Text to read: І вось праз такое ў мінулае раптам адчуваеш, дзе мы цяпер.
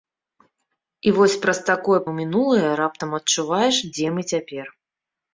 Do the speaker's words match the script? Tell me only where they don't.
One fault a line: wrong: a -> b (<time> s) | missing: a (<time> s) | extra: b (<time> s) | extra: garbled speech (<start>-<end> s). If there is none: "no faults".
no faults